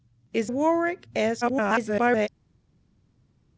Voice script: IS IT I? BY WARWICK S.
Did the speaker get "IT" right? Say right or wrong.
wrong